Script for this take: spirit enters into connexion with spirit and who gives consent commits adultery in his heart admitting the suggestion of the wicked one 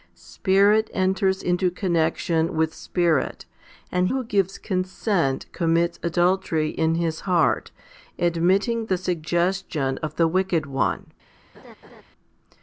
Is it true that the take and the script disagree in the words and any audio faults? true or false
true